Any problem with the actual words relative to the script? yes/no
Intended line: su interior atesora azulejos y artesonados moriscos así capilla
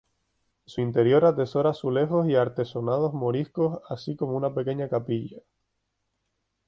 yes